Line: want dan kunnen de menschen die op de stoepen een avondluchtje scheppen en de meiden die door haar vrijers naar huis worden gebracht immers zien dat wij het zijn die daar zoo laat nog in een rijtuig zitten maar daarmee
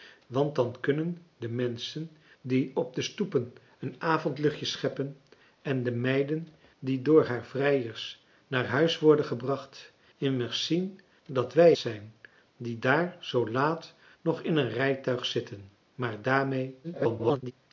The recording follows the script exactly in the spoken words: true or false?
false